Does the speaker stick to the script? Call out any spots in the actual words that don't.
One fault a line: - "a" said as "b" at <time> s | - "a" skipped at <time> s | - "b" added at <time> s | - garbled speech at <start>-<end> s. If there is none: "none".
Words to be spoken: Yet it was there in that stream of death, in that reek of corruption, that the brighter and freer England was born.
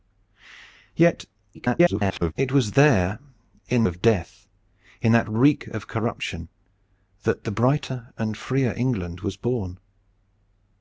- garbled speech at 1.5-2.3 s
- "that stream" skipped at 3.8 s